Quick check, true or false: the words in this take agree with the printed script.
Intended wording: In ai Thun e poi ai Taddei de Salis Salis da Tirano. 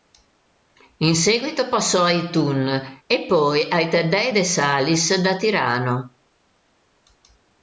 false